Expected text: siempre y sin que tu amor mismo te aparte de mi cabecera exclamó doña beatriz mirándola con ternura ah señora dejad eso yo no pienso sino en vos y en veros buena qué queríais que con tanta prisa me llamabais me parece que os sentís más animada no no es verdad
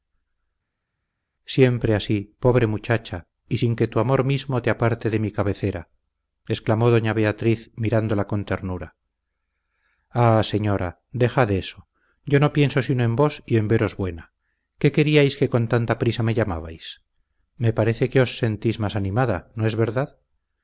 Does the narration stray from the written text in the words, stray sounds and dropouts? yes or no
yes